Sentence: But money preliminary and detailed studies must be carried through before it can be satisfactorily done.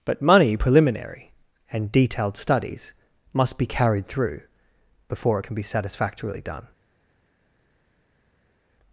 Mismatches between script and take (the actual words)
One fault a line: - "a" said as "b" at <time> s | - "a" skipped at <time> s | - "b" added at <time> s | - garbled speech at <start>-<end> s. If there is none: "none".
none